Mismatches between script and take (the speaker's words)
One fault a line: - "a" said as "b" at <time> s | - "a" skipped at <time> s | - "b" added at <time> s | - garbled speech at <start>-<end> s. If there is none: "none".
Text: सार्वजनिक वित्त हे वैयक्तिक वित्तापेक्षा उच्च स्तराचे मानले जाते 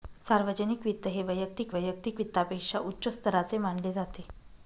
- "वैयक्तिक" added at 1.7 s